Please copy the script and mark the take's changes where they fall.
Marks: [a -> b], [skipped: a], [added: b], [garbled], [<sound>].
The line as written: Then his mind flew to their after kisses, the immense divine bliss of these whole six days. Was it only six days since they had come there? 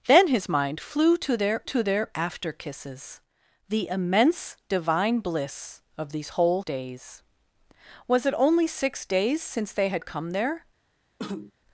Then his mind flew to their [added: to their] after kisses, the immense divine bliss of these whole [skipped: six] days. Was it only six days since they had come there? [cough]